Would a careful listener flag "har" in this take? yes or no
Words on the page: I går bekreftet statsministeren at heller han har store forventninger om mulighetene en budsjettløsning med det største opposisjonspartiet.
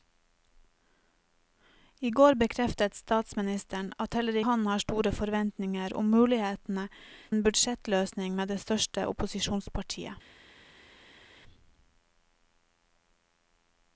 no